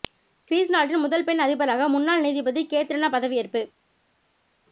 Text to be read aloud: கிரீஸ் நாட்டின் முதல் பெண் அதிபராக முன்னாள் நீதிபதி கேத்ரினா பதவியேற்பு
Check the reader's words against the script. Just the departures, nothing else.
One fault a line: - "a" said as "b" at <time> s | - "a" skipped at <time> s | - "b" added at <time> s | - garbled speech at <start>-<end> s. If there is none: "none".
none